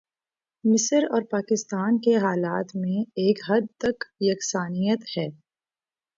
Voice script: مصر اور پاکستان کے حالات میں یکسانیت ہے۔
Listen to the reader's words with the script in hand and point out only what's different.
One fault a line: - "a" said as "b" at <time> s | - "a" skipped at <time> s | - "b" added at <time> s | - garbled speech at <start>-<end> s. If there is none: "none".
- "ایک حد تک" added at 3.1 s